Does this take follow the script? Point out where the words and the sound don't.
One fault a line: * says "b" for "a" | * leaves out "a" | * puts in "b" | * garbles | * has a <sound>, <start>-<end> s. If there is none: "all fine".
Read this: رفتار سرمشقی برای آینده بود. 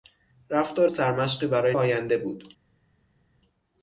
all fine